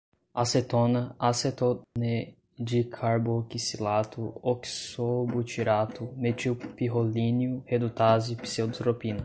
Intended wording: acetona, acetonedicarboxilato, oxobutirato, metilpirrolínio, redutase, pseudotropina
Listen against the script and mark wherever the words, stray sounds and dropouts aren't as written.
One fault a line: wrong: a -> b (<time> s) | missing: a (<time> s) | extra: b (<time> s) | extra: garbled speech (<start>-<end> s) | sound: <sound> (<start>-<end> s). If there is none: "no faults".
sound: dropout (1.8-2.0 s)